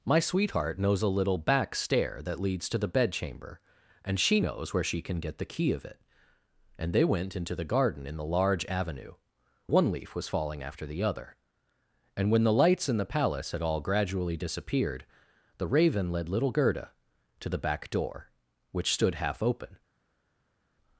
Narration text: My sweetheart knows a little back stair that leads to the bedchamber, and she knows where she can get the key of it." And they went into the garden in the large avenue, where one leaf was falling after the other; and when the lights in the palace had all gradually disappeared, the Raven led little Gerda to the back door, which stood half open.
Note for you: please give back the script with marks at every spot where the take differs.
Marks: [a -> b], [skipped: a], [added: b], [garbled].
My sweetheart knows a little back stair that leads to the bedchamber, and she knows where she can get the key of it." And they went into the garden in the large avenue, [skipped: where] one leaf was falling after the other; and when the lights in the palace had all gradually disappeared, the Raven led little Gerda to the back door, which stood half open.